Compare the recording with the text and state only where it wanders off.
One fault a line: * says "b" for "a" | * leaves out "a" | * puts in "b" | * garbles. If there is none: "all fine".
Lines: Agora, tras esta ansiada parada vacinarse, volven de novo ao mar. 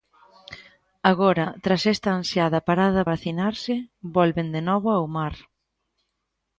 all fine